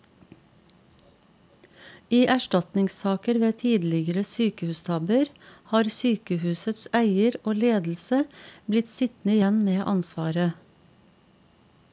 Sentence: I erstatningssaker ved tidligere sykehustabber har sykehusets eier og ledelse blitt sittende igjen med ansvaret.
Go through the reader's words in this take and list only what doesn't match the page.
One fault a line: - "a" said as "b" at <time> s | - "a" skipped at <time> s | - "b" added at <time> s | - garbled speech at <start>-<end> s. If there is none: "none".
none